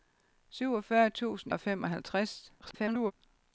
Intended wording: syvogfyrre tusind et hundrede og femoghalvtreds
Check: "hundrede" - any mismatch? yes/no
yes